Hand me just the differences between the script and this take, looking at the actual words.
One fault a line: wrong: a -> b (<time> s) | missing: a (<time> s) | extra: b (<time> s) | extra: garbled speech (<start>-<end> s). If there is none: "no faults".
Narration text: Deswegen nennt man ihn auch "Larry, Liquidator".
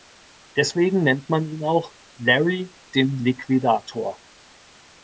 extra: den (3.0 s)